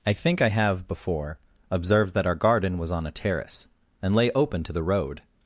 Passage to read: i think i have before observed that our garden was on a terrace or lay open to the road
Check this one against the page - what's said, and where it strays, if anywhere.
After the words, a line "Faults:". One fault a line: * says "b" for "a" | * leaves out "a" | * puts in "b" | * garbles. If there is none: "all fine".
i think i have before observed that our garden was on a terrace and lay open to the road
Faults:
* says "and" for "or"